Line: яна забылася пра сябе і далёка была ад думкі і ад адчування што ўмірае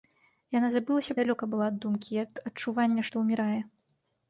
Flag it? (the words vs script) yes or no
yes